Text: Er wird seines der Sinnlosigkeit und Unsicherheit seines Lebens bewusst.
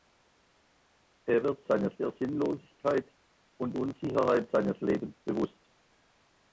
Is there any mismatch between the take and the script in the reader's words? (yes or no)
no